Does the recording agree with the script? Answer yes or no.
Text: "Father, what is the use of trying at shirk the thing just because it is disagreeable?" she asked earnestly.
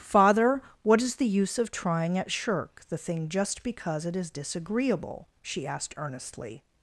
yes